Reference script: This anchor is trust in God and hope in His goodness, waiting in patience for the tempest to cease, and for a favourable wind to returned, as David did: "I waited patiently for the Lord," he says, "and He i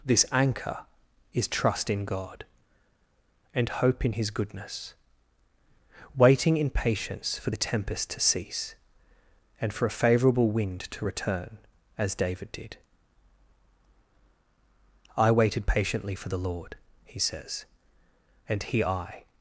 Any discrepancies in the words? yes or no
yes